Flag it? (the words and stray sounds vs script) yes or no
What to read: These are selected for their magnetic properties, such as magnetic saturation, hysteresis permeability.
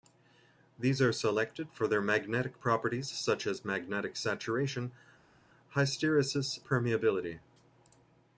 no